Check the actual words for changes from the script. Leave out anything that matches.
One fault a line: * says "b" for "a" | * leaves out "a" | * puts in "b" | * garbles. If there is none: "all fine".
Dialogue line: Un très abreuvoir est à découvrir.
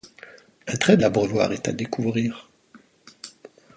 all fine